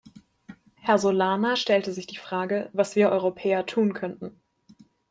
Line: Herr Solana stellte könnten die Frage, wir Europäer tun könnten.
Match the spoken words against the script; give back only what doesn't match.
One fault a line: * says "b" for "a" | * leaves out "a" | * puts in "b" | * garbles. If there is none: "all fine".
* says "sich" for "könnten"
* puts in "was"